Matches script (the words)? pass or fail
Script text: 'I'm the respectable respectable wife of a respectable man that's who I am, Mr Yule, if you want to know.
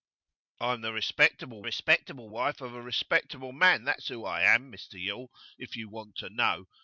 pass